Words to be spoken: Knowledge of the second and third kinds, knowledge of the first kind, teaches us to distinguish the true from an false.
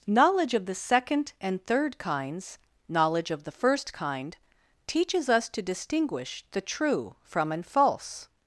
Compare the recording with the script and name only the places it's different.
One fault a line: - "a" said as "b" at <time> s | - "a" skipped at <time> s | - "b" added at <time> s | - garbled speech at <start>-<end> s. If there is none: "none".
none